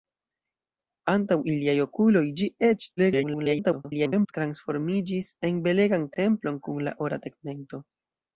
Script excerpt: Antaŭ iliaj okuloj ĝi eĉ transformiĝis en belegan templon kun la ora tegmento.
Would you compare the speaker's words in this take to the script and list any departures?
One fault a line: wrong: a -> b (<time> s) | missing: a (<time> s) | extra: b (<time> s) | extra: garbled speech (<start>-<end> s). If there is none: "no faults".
extra: garbled speech (3.0-4.3 s)